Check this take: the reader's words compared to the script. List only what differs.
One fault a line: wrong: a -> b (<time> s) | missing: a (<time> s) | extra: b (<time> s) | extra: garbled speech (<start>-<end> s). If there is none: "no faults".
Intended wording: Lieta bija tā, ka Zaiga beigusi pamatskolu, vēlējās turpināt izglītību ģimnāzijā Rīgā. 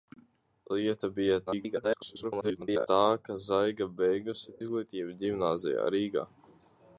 extra: garbled speech (1.5-2.9 s)
missing: pamatskolu vēlējās turpināt (4.5 s)